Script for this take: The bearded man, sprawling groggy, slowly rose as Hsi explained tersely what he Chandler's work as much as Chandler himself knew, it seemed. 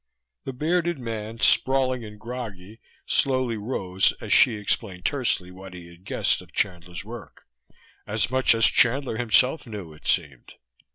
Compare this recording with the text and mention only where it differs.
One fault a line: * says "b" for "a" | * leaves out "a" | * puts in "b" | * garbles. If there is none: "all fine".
* puts in "and"
* puts in "had guessed of"